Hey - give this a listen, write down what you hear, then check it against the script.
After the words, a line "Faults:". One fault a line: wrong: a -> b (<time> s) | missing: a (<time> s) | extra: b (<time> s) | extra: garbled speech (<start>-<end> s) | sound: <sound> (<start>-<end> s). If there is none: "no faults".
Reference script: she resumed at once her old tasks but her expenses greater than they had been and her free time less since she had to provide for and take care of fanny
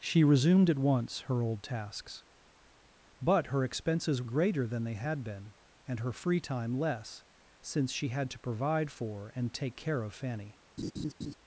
she resumed at once her old tasks but her expenses greater than they had been and her free time less since she had to provide for and take care of fanny
Faults:
sound: laugh (10.8-11.3 s)